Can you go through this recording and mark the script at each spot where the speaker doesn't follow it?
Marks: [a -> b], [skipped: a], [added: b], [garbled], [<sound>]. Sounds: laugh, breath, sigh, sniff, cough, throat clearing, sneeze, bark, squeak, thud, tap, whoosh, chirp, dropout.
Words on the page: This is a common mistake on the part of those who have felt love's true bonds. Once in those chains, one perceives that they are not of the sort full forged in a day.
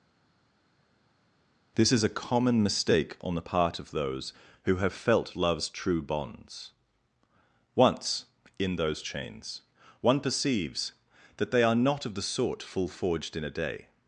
This is a common mistake on the part of those who have felt love's true bonds. Once in those chains, one perceives that they are not of the sort full forged in a day.